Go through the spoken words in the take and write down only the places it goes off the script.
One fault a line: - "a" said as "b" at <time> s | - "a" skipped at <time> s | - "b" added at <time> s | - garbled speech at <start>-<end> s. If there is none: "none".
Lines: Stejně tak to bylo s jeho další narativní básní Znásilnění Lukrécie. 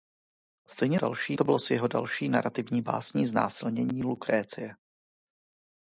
- "tak" said as "další" at 0.9 s